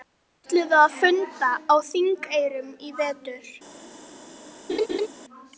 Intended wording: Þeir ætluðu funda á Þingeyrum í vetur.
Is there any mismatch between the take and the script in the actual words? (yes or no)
yes